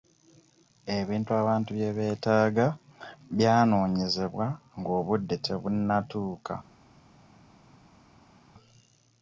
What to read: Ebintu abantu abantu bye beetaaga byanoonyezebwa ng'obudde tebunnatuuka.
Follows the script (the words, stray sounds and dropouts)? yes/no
no